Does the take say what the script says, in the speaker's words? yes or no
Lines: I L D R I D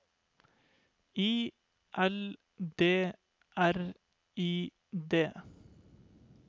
yes